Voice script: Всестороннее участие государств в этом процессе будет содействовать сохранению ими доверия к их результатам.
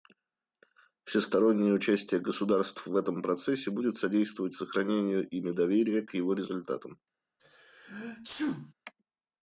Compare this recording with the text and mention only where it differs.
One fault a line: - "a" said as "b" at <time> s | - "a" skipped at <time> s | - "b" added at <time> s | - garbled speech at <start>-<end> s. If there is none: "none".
- "их" said as "его" at 6.1 s